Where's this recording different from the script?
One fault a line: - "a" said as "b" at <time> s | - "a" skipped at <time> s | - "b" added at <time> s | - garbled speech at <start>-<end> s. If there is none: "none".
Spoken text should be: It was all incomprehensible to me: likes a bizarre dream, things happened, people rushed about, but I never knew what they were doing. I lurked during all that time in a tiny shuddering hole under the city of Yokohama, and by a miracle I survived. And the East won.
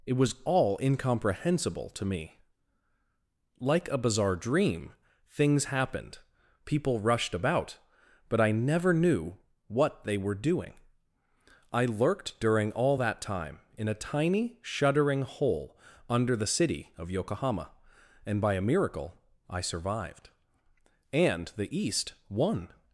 - "likes" said as "like" at 3.6 s